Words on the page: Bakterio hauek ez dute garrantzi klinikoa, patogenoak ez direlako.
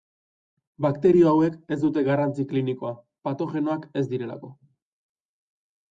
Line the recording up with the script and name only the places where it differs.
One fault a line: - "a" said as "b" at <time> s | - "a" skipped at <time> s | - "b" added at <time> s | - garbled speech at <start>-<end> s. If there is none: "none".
none